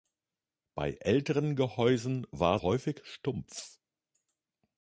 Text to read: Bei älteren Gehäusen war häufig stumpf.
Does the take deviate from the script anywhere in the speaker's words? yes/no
no